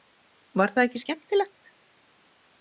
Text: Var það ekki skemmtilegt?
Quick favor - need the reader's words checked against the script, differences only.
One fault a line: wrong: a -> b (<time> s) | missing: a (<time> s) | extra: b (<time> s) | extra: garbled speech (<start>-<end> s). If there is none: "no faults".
no faults